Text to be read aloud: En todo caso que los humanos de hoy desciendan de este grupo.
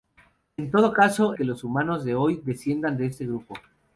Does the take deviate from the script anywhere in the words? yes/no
no